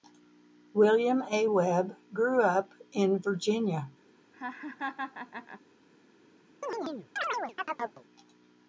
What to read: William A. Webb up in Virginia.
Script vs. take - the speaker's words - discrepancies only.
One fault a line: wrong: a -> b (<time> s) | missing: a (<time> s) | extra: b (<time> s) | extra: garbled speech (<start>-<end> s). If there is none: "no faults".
extra: grew (2.1 s)